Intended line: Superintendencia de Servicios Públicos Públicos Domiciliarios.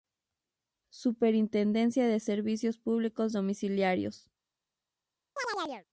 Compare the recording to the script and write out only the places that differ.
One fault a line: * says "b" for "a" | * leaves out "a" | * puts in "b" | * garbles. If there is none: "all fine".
* leaves out "Públicos"